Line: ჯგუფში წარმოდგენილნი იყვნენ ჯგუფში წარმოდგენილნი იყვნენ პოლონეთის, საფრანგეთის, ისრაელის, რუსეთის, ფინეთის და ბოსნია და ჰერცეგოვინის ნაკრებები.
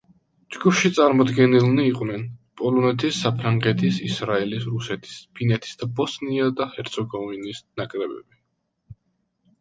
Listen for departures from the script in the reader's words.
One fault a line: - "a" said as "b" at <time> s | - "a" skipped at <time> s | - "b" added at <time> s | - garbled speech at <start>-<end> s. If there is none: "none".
- "ჯგუფში წარმოდგენილნი იყვნენ" skipped at 2.2 s